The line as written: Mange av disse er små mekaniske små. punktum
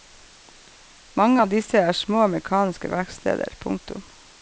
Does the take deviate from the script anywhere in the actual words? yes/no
yes